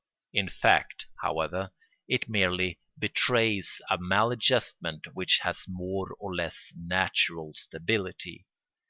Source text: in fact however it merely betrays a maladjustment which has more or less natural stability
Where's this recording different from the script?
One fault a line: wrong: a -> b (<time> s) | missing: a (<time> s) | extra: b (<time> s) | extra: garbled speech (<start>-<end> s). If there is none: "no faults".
no faults